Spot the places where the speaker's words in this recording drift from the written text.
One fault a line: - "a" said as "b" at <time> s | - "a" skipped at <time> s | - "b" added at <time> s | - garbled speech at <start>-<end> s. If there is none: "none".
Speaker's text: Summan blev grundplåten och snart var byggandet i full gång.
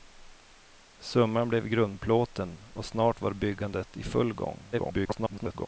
- garbled speech at 4.7-5.7 s